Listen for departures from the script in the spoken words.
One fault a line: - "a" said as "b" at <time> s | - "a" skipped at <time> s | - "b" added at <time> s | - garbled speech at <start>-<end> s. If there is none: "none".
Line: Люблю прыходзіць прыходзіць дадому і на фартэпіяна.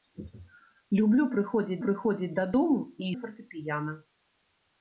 none